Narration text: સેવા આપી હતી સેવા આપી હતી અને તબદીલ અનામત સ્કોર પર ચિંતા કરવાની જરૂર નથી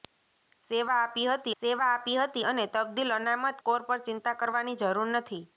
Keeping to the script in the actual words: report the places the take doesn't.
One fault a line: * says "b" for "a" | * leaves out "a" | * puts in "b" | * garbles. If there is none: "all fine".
all fine